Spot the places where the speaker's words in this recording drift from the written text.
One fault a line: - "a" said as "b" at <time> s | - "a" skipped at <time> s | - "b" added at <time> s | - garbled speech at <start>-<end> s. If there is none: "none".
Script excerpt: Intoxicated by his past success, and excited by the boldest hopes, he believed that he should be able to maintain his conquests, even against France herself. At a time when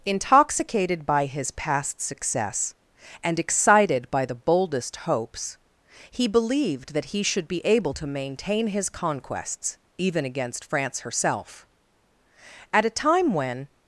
none